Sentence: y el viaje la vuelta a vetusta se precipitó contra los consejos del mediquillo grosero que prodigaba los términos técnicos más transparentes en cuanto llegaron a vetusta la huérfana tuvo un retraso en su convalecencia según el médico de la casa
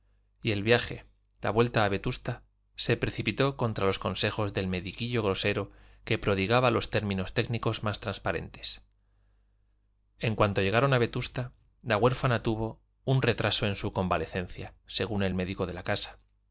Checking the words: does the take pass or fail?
pass